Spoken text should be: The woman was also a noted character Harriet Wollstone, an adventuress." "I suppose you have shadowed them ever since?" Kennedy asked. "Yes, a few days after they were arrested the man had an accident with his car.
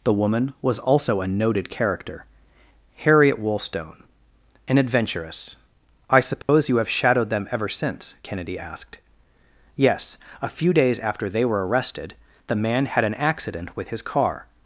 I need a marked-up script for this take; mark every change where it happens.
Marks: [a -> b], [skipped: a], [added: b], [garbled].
The woman was also a noted character Harriet Wollstone, an adventuress." "I suppose you have shadowed them ever since?" Kennedy asked. "Yes, a few days after they were arrested the man had an accident with his car.